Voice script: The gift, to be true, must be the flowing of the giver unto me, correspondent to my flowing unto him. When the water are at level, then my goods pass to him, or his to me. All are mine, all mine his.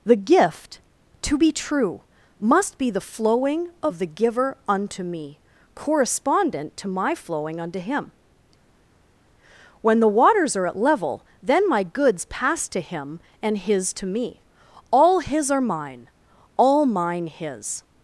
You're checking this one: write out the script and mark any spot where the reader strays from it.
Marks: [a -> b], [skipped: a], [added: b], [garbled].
The gift, to be true, must be the flowing of the giver unto me, correspondent to my flowing unto him. When the [water -> waters] are at level, then my goods pass to him, [or -> and] his to me. All [added: his] are mine, all mine his.